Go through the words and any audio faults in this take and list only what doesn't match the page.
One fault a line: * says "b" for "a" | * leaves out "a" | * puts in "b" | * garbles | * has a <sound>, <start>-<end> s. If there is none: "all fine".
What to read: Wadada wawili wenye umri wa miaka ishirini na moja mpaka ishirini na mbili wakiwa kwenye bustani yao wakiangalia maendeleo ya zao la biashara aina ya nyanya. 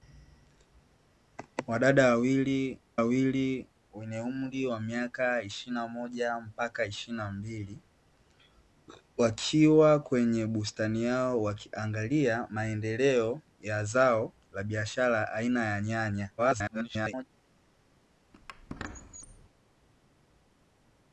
* puts in "wawili"
* garbles
* has a squeak, 18.3-19.5 s